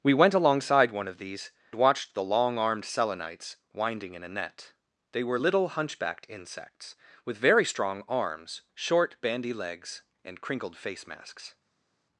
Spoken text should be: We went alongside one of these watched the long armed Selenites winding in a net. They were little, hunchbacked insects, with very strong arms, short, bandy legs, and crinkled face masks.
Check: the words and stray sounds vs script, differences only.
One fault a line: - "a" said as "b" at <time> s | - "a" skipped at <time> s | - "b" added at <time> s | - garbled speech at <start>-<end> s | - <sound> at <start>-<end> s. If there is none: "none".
none